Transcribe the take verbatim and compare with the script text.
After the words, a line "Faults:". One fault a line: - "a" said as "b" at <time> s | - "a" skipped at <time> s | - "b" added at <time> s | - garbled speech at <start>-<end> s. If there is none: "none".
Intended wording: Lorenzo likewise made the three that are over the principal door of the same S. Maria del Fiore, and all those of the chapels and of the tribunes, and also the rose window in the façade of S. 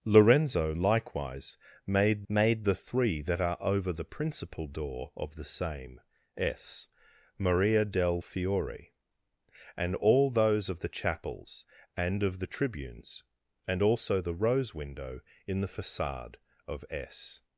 Lorenzo likewise made made the three that are over the principal door of the same S. Maria del Fiore, and all those of the chapels and of the tribunes, and also the rose window in the façade of S.
Faults:
- "made" added at 2.3 s